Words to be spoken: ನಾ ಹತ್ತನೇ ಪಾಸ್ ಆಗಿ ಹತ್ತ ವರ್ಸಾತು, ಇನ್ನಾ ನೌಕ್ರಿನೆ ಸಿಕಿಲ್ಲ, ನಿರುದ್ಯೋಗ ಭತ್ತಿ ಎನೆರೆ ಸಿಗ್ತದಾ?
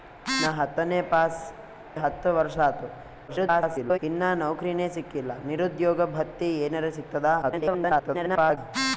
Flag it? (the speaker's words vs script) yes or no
yes